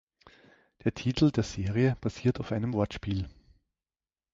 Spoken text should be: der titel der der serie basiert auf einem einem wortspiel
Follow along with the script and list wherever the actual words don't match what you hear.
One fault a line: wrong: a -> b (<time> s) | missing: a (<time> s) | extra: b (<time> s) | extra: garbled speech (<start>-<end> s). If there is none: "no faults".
missing: der (1.4 s)
missing: einem (2.7 s)